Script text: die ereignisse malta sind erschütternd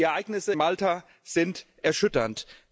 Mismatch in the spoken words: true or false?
false